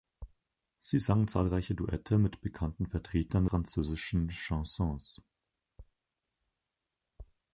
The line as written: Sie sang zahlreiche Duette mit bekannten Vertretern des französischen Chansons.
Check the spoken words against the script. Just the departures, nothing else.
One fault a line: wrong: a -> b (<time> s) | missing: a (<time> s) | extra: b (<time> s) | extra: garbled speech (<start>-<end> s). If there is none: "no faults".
missing: des (3.5 s)